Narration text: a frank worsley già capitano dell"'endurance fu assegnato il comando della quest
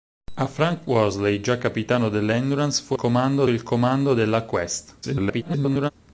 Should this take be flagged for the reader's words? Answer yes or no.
yes